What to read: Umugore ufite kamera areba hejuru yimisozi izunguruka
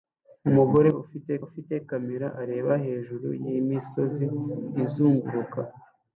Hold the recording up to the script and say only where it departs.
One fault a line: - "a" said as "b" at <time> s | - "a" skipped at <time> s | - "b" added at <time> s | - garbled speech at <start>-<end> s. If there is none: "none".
- "ufite" added at 1.4 s